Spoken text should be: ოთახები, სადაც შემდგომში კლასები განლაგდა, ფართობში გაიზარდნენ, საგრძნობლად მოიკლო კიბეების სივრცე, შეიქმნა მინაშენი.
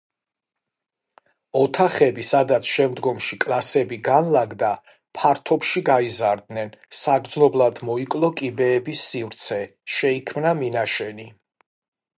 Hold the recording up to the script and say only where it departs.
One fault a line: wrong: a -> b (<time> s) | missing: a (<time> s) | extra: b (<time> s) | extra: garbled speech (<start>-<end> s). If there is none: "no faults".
no faults